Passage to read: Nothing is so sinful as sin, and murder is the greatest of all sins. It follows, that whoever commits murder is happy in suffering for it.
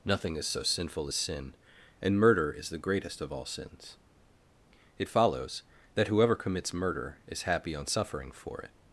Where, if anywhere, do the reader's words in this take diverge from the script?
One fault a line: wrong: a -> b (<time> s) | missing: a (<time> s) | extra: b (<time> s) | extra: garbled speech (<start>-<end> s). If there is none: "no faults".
wrong: in -> on (7.7 s)